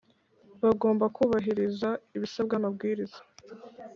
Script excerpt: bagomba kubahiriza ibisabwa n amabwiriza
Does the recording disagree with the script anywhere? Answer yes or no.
no